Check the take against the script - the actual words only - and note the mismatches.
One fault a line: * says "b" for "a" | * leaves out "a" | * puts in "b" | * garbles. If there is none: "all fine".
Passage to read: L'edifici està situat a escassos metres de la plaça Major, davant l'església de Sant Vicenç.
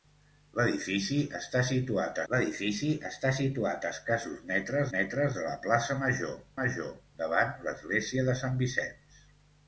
* puts in "l'edifici està situat"
* puts in "metres"
* puts in "Major"